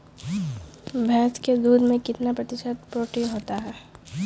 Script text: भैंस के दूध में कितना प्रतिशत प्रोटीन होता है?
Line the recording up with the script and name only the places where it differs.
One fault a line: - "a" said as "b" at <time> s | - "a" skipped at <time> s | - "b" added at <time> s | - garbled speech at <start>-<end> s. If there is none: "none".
none